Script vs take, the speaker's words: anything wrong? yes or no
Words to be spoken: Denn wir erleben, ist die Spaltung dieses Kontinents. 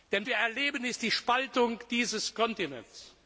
no